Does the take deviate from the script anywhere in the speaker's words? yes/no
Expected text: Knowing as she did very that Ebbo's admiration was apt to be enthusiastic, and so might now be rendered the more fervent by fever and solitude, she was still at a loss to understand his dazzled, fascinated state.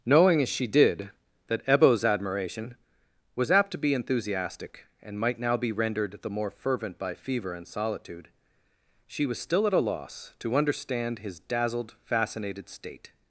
yes